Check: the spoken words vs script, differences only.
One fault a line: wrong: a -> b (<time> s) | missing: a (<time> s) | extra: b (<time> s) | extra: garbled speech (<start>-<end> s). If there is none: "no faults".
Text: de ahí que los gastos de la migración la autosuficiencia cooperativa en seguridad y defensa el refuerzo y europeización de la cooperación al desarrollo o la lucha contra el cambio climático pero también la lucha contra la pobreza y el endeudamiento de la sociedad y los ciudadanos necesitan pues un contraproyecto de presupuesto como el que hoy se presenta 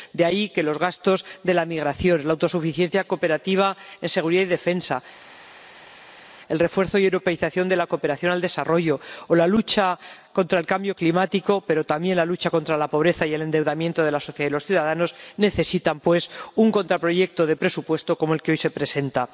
no faults